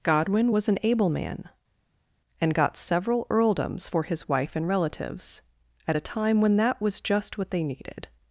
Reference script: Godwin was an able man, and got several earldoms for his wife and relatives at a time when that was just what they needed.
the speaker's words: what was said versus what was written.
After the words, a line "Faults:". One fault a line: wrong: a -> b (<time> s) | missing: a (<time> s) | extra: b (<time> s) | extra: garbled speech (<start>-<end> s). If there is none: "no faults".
Godwin was an able man, and got several earldoms for his wife and relatives at a time when that was just what they needed.
Faults:
no faults